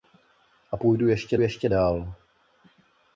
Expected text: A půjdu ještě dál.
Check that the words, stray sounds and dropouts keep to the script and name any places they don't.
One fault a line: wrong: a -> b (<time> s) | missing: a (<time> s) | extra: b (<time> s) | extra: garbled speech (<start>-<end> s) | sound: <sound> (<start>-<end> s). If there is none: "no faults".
extra: ještě (1.4 s)